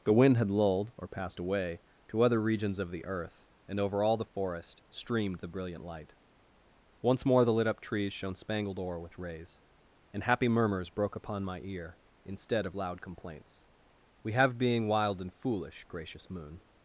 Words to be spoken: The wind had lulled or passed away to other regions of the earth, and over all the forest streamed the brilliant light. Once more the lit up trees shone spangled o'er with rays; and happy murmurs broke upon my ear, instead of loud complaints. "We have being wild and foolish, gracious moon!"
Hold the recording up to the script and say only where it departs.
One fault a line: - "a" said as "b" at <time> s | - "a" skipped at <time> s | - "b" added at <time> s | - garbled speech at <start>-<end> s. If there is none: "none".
none